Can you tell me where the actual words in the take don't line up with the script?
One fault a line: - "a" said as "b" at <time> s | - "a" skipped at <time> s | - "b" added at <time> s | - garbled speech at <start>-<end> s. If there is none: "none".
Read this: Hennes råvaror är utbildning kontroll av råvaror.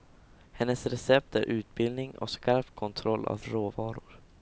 - "råvaror" said as "recept" at 0.8 s
- "och skarp" added at 2.2 s